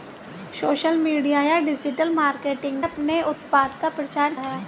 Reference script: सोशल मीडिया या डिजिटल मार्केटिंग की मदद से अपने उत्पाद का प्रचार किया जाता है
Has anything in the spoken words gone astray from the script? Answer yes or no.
yes